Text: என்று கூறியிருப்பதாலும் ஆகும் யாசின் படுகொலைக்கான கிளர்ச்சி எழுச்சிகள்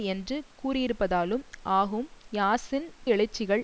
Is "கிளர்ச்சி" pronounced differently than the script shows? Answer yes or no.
yes